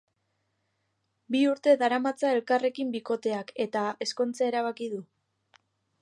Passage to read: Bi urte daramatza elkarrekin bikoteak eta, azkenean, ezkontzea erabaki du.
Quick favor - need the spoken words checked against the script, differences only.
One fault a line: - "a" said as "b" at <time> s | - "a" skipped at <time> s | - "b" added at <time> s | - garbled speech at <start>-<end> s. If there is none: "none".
- "azkenean" skipped at 3.8 s